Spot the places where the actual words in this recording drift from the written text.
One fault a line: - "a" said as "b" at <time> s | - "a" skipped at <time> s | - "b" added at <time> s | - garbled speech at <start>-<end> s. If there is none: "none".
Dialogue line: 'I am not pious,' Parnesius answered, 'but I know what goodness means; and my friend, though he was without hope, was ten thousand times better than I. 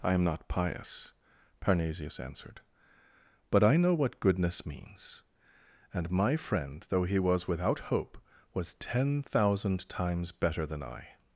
none